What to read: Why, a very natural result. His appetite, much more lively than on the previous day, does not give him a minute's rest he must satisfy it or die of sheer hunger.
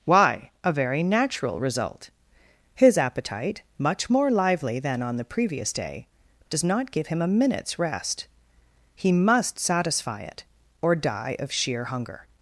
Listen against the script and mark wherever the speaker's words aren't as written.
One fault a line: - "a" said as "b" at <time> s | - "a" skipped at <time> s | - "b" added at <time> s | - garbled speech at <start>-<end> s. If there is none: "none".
none